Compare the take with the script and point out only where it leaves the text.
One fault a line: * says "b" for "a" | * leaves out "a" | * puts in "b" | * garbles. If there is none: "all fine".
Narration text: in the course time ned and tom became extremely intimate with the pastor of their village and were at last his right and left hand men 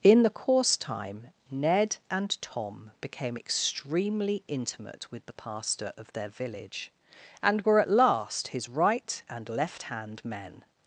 all fine